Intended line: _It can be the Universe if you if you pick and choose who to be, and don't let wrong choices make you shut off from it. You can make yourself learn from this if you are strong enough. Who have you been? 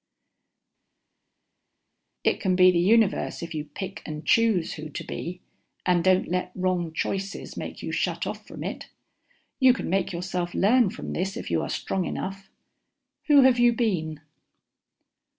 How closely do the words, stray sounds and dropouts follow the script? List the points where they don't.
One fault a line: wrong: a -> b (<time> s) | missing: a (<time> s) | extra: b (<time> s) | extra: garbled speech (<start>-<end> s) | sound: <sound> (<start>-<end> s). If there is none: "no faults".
missing: if you (3.6 s)